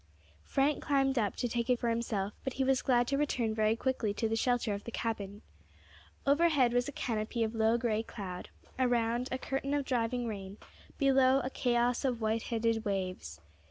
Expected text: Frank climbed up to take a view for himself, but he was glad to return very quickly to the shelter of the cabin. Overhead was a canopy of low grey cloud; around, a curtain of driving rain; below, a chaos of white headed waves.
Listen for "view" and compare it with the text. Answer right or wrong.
wrong